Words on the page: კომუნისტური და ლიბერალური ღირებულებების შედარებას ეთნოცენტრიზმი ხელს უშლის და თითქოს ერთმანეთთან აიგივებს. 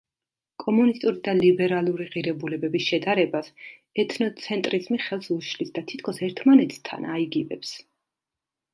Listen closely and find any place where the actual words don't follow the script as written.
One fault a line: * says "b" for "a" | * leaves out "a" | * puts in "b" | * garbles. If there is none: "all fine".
all fine